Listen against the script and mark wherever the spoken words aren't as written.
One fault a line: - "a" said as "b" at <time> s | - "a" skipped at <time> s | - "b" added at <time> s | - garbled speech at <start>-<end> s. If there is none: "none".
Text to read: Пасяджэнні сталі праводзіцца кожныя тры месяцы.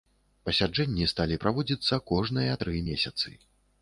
none